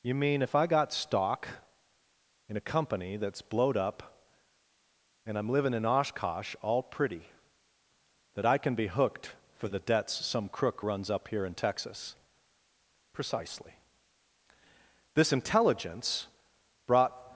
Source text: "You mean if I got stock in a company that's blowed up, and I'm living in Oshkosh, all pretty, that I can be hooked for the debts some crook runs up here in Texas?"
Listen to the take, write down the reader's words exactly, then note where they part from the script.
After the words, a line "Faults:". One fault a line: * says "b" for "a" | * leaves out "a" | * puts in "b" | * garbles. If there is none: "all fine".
"You mean if I got stock in a company that's blowed up, and I'm living in Oshkosh, all pretty, that I can be hooked for the debts some crook runs up here in Texas?" "Precisely." This intelligence brought
Faults:
* puts in "Precisely This intelligence brought"